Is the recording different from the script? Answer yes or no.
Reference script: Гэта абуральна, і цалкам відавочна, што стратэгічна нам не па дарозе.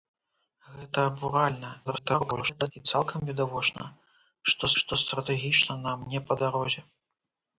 yes